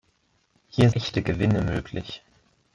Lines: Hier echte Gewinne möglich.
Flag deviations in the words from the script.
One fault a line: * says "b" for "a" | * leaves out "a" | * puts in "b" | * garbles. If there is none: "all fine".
all fine